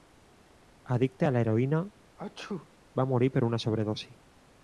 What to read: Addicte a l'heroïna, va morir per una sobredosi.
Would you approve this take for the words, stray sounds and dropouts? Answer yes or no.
no